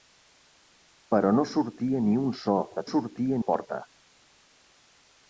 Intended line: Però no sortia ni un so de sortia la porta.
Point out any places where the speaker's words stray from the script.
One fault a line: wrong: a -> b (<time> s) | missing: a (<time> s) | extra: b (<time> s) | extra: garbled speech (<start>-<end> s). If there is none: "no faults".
no faults